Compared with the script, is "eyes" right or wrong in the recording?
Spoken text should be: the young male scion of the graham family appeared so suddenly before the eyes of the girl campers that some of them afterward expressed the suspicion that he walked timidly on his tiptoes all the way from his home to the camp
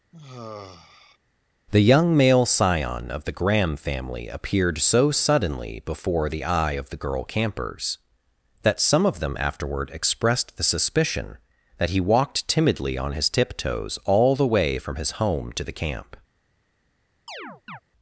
wrong